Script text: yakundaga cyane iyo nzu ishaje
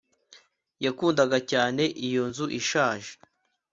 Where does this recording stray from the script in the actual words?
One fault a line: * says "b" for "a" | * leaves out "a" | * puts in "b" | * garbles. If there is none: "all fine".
all fine